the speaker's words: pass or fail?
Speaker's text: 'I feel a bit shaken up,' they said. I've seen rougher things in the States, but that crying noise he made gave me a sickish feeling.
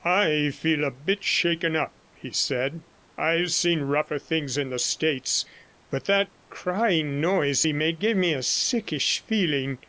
fail